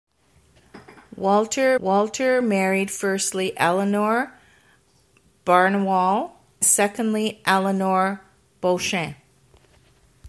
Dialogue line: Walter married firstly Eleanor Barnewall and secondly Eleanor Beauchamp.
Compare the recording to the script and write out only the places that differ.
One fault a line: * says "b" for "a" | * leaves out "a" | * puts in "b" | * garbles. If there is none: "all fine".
* puts in "walter"
* leaves out "and"